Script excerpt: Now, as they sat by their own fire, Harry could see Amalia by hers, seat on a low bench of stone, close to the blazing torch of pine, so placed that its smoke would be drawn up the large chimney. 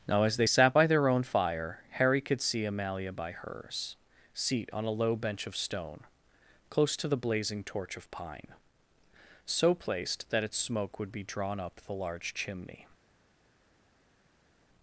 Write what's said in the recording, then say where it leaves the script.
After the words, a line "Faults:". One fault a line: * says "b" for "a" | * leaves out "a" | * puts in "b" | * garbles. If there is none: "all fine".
Now, as they sat by their own fire, Harry could see Amalia by hers, seat on a low bench of stone, close to the blazing torch of pine, so placed that its smoke would be drawn up the large chimney.
Faults:
all fine